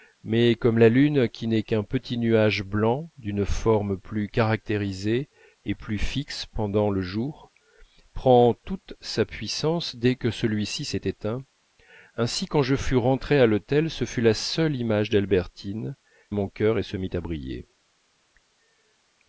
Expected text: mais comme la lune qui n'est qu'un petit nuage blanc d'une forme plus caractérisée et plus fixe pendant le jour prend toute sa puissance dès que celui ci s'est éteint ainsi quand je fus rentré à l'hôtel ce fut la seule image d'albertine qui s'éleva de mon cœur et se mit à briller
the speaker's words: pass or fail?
fail